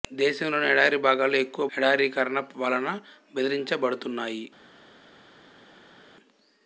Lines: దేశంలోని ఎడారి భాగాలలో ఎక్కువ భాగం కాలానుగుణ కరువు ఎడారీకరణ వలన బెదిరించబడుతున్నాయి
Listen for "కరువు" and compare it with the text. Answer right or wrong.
wrong